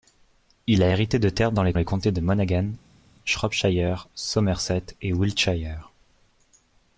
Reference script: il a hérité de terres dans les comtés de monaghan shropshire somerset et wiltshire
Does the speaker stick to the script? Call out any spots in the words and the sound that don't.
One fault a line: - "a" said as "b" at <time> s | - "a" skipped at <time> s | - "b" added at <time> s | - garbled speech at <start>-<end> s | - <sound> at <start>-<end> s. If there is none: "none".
- "les" added at 1.7 s